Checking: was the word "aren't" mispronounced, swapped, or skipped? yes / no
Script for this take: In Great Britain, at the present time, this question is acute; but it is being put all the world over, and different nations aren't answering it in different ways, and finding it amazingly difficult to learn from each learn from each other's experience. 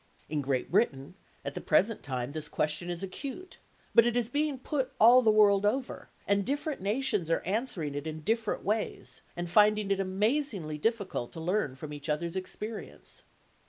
yes